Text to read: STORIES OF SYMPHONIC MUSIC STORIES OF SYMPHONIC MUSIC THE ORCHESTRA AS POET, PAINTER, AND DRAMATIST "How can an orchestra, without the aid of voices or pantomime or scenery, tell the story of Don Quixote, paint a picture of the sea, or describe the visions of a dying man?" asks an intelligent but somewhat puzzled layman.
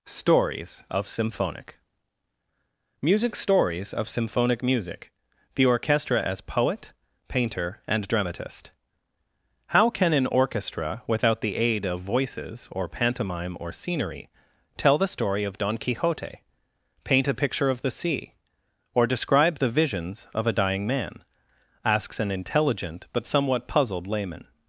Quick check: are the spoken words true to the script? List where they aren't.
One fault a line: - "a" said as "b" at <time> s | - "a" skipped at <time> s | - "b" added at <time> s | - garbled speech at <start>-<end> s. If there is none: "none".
none